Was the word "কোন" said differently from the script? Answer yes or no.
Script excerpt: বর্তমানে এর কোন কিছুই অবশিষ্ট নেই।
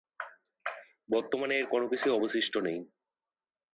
no